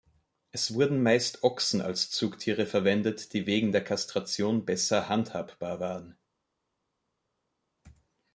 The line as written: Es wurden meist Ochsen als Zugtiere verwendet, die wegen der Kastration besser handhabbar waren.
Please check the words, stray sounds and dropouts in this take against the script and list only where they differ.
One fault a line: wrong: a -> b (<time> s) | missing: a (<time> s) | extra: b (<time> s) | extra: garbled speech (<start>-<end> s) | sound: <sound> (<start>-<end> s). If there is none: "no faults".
no faults